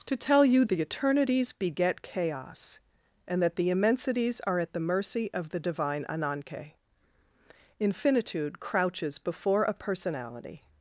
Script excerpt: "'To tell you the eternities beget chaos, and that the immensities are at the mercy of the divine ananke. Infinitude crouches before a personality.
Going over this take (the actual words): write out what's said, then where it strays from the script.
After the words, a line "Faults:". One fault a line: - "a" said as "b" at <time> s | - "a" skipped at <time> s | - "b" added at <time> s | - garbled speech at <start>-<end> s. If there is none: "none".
"'To tell you the eternities beget chaos, and that the immensities are at the mercy of the divine ananke. Infinitude crouches before a personality.
Faults:
none